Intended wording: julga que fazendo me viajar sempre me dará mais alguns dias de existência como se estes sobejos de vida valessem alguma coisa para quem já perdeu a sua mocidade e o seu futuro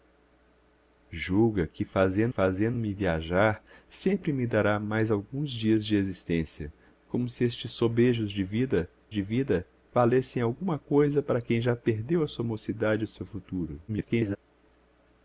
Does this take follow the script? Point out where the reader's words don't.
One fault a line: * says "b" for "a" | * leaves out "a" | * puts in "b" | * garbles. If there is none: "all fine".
* puts in "fazendo"
* puts in "de vida"
* garbles